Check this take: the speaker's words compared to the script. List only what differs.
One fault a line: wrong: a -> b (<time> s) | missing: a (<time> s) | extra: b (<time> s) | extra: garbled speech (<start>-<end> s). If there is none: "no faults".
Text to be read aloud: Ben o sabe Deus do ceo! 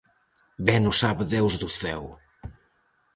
no faults